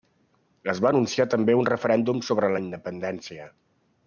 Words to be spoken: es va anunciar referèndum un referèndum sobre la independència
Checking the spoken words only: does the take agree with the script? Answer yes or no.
no